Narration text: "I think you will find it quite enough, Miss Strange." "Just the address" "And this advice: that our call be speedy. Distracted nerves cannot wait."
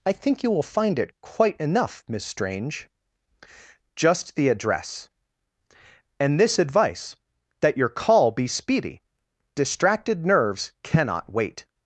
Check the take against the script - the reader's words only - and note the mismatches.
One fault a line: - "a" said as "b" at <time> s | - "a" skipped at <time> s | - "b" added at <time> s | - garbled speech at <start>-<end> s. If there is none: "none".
- "our" said as "your" at 7.8 s